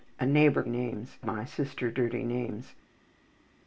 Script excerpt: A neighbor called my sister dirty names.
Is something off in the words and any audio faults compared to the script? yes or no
yes